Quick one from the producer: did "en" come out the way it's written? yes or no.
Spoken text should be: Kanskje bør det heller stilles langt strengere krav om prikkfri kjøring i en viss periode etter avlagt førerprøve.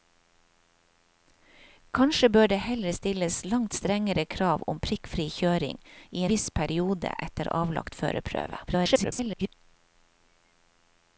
no